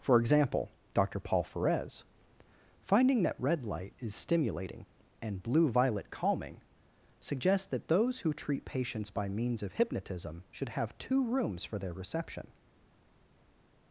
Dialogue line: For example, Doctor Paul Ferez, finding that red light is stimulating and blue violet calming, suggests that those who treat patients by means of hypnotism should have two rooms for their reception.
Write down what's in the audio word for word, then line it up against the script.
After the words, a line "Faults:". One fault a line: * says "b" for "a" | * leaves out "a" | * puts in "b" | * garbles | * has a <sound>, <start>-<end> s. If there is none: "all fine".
For example, Doctor Paul Ferez, finding that red light is stimulating and blue violet calming, suggests that those who treat patients by means of hypnotism should have two rooms for their reception.
Faults:
all fine